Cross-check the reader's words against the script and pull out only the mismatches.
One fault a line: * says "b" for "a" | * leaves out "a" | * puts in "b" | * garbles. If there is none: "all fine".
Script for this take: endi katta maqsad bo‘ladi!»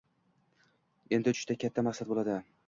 * puts in "uchishda"